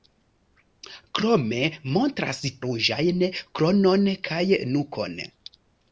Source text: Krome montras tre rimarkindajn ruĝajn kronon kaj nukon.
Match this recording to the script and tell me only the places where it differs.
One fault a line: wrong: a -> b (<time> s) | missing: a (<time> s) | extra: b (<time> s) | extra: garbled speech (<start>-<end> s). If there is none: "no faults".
missing: tre rimarkindajn (2.4 s)